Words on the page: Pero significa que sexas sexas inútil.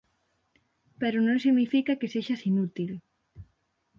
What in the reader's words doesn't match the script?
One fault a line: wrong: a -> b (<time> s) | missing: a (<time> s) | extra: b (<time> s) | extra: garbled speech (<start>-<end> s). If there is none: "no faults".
extra: non (1.3 s)
missing: sexas (2.4 s)